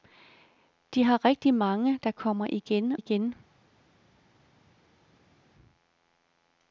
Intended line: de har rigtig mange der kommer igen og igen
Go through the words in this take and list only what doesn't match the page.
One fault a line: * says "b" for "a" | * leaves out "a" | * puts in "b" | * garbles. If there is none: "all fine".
* leaves out "og"